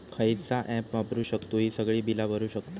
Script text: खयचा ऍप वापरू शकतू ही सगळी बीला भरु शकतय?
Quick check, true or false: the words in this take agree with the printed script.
true